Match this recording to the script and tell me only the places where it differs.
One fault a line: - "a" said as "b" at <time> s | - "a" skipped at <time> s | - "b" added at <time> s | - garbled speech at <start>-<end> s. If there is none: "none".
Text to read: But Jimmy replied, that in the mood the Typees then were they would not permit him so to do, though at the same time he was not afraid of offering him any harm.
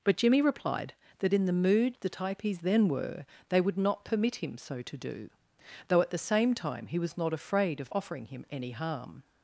none